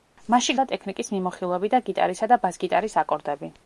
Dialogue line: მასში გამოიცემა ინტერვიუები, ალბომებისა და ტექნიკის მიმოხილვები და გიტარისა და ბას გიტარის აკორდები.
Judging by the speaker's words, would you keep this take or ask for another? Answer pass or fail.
fail